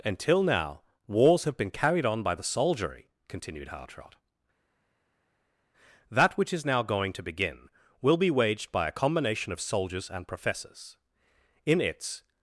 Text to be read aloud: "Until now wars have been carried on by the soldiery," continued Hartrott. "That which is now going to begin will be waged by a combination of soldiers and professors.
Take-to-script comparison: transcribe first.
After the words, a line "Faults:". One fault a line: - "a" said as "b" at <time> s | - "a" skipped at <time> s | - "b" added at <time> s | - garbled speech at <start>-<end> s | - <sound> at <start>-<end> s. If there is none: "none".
"Until now wars have been carried on by the soldiery," continued Hartrott. "That which is now going to begin will be waged by a combination of soldiers and professors. In its
Faults:
- "In its" added at 11.7 s